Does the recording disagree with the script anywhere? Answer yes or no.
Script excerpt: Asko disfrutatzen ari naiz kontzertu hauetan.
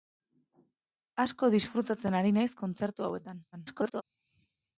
yes